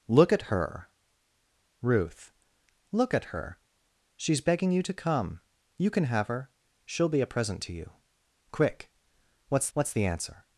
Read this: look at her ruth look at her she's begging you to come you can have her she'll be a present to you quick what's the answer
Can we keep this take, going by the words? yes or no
no